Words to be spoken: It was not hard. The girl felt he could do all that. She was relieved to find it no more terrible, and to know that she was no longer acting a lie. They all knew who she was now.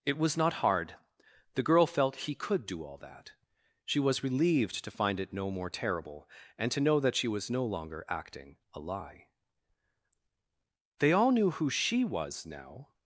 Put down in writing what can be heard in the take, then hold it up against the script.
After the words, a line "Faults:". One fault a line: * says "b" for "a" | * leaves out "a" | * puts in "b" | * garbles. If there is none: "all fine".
It was not hard. The girl felt he could do all that. She was relieved to find it no more terrible, and to know that she was no longer acting a lie. They all knew who she was now.
Faults:
all fine